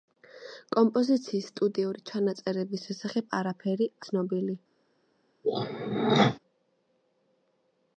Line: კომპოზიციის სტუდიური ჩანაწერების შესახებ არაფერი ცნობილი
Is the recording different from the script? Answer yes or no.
no